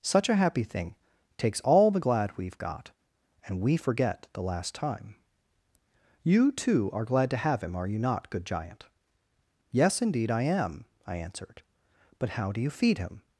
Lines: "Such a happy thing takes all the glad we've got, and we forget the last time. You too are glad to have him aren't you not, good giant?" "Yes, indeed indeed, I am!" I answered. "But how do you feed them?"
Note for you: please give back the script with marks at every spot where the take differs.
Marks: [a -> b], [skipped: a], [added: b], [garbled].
"Such a happy thing takes all the glad we've got, and we forget the last time. You too are glad to have him [aren't -> are] you not, good giant?" "Yes, indeed [skipped: indeed,] I am!" I answered. "But how do you feed [them?" -> him]